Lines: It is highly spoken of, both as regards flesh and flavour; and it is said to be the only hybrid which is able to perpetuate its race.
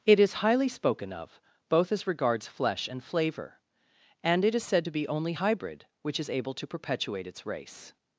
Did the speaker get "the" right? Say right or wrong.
wrong